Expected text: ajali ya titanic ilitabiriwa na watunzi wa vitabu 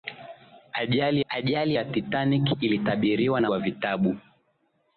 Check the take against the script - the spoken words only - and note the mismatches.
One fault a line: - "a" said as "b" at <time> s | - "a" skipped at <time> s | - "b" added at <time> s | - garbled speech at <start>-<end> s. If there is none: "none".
- "ajali" added at 1.3 s
- "watunzi" skipped at 3.5 s